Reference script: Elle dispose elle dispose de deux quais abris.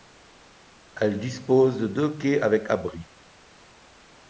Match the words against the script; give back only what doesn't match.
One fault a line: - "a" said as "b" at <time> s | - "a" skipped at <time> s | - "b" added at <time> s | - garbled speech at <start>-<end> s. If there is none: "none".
- "elle dispose" skipped at 1.8 s
- "avec" added at 2.4 s